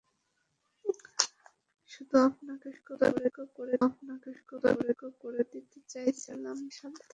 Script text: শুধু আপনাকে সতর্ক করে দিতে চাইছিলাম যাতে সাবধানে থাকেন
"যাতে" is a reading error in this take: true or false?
true